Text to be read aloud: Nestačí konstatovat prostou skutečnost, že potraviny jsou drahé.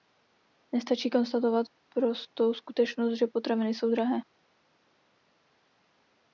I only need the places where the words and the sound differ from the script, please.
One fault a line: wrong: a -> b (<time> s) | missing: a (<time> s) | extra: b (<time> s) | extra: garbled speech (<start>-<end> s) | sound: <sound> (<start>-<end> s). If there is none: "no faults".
no faults